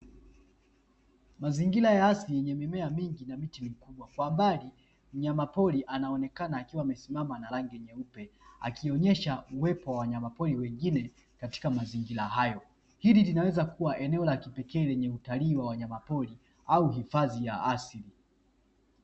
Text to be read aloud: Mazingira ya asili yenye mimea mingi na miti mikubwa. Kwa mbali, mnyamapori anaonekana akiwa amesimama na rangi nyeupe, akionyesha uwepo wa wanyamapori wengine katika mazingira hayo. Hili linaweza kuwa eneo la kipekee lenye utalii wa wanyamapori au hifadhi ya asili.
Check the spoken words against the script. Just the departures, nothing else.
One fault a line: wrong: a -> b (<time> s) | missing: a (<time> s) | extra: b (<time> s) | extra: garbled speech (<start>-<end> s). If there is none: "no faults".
no faults